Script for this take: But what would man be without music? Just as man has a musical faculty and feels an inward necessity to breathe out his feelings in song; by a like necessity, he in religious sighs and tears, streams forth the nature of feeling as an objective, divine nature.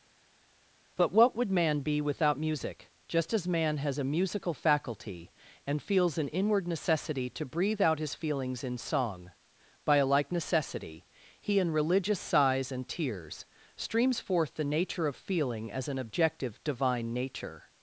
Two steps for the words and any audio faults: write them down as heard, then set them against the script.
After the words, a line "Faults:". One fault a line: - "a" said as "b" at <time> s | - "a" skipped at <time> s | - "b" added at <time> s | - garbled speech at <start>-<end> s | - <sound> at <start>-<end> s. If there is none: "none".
But what would man be without music? Just as man has a musical faculty and feels an inward necessity to breathe out his feelings in song; by a like necessity, he in religious sighs and tears, streams forth the nature of feeling as an objective, divine nature.
Faults:
none